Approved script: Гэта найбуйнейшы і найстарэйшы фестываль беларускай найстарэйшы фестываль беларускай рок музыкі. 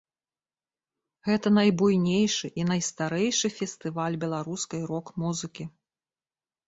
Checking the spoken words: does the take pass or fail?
fail